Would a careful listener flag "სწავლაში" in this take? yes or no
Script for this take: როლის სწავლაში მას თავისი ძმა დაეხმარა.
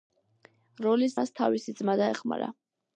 yes